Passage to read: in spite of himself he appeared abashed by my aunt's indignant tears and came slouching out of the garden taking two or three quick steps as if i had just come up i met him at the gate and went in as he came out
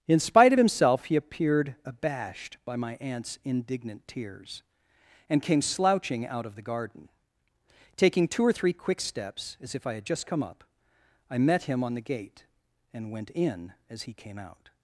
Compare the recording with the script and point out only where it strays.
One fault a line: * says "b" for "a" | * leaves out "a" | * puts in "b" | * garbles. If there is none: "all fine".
* says "on" for "at"